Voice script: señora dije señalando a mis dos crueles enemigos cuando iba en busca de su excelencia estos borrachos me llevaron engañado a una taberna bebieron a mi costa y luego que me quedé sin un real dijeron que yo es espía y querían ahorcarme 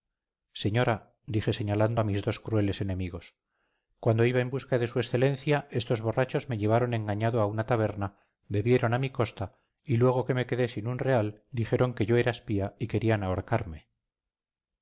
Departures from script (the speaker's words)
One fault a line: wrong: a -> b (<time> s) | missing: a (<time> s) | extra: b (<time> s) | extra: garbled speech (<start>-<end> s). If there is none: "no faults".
wrong: es -> era (12.2 s)